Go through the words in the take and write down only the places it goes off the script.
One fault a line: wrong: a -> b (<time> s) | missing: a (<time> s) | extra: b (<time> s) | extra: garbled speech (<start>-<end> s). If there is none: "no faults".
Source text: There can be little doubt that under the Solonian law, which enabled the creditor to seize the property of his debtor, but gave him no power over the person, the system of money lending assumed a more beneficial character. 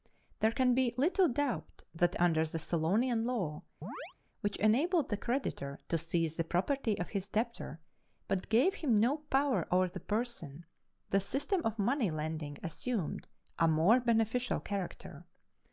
no faults